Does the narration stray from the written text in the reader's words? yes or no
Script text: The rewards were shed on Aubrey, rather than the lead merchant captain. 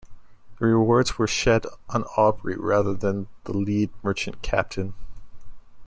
no